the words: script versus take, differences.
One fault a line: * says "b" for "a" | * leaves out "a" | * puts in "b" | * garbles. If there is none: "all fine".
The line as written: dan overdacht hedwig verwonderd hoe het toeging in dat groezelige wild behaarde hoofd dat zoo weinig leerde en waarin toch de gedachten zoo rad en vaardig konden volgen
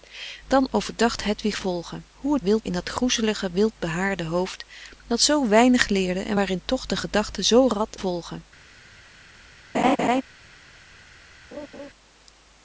* says "volgen" for "verwonderd"
* says "wild" for "toeging"
* leaves out "en vaardig konden"